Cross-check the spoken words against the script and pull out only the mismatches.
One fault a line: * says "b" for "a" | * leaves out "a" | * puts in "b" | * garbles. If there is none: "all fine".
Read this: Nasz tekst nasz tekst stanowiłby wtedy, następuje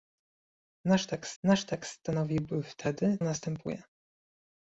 all fine